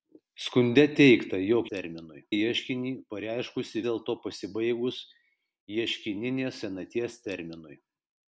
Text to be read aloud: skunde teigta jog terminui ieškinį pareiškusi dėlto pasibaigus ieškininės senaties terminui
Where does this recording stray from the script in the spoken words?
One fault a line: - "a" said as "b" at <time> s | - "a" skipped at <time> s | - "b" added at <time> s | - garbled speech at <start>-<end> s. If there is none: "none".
none